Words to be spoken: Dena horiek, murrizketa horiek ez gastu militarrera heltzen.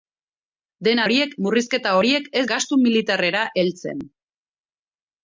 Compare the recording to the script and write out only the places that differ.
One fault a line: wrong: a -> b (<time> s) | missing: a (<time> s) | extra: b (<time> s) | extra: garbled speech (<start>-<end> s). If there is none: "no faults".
no faults